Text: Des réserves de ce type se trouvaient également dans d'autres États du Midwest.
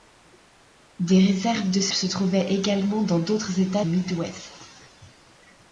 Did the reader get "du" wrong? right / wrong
wrong